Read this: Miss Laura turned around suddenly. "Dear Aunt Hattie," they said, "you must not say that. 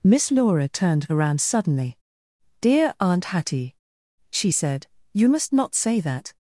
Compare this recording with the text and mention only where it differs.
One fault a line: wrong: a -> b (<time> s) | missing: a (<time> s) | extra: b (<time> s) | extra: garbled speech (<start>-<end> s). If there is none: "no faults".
wrong: they -> she (4.3 s)